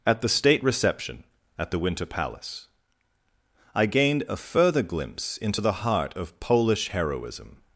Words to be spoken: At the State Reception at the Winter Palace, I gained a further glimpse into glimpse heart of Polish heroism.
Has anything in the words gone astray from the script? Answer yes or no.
yes